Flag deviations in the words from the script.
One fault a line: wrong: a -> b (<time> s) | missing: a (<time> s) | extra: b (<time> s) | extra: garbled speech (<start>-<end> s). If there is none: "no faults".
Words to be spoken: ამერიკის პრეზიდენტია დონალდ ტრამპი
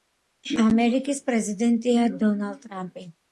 no faults